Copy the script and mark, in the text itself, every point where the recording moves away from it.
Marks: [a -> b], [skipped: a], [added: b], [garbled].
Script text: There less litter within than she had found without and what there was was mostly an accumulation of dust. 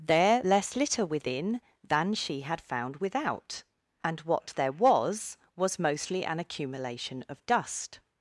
There less litter within than she had found without and what there was was mostly an accumulation of dust.